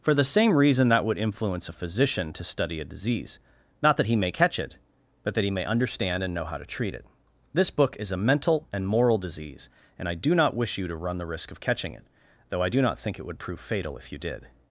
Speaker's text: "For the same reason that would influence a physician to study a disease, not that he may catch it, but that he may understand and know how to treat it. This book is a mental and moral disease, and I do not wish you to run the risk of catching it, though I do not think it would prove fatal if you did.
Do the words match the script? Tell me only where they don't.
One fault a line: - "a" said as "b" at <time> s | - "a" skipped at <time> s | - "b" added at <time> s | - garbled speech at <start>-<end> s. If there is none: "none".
none